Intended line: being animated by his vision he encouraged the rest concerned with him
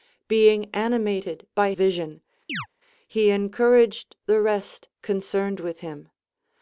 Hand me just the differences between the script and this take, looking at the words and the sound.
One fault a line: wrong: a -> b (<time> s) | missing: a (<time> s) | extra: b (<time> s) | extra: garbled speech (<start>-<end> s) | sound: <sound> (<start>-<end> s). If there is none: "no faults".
missing: his (1.7 s)
sound: chirp (2.5-2.7 s)